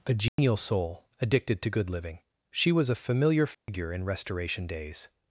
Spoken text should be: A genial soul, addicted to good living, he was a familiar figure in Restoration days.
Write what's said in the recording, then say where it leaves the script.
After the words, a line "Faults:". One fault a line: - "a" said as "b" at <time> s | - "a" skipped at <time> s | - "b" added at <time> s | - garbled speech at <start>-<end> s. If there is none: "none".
A genial soul, addicted to good living, she was a familiar figure in Restoration days.
Faults:
- "he" said as "she" at 2.5 s